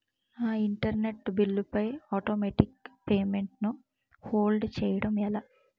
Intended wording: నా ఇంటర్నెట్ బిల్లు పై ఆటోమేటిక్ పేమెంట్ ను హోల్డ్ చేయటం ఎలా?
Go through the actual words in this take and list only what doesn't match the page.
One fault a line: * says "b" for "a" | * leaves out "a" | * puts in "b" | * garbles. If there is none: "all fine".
all fine